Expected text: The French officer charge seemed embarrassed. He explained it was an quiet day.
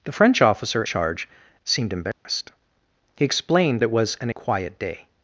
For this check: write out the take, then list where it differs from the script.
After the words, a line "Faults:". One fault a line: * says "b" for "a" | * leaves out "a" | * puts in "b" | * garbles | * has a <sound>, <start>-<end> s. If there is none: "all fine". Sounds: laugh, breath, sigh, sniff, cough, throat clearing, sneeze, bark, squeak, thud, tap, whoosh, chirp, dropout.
The French officer charge seemed embarrassed. He explained it was an quiet day.
Faults:
* has a dropout, 2.1-2.2 s